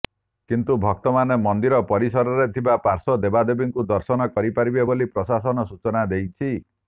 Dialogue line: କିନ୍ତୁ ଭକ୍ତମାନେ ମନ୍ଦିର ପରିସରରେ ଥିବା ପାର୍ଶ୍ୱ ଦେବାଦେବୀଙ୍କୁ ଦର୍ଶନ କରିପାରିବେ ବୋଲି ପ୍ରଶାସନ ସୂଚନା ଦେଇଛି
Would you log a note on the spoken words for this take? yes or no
no